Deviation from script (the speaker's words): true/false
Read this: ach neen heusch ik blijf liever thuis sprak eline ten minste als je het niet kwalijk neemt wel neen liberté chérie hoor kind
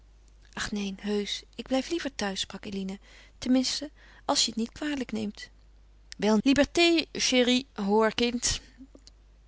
true